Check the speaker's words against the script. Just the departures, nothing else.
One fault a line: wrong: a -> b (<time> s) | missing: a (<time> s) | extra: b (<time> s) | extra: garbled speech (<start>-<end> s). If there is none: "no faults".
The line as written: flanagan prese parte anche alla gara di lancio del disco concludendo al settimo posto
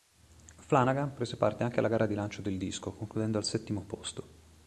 no faults